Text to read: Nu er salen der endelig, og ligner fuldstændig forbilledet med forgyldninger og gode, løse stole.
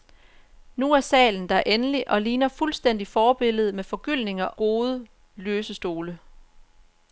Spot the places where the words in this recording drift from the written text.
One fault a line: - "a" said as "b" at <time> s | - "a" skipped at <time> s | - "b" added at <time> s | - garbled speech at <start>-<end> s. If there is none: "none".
- "og" skipped at 4.5 s